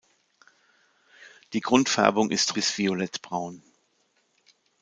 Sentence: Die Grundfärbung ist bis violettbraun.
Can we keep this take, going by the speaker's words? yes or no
yes